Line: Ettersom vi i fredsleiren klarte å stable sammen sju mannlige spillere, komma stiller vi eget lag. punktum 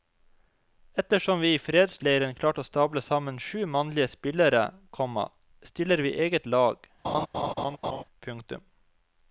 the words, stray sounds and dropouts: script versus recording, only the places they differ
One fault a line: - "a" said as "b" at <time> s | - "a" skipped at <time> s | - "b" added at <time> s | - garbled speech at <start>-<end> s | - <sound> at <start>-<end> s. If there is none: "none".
- laugh at 7.0-8.0 s